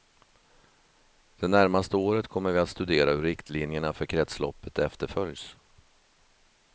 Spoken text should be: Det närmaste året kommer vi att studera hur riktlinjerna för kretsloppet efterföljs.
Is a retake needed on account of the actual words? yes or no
no